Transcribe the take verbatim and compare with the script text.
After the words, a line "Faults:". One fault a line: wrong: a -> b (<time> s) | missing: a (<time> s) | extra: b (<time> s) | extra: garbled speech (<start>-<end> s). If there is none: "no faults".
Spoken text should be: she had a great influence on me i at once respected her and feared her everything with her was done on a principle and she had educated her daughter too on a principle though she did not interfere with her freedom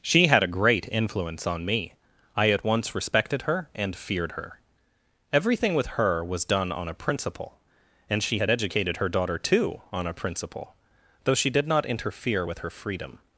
she had a great influence on me i at once respected her and feared her everything with her was done on a principle and she had educated her daughter too on a principle though she did not interfere with her freedom
Faults:
no faults